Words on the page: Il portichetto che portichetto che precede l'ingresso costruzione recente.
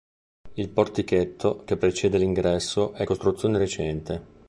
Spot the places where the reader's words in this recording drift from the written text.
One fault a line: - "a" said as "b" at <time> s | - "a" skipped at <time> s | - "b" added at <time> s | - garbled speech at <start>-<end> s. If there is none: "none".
- "portichetto che" skipped at 1.8 s
- "è" added at 2.9 s